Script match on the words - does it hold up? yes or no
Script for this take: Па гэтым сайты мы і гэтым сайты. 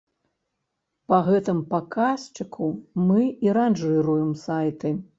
no